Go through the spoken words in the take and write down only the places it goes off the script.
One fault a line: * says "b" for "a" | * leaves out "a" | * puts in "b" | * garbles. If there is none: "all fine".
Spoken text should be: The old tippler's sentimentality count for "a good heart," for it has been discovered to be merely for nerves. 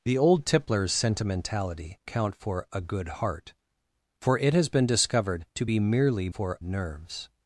all fine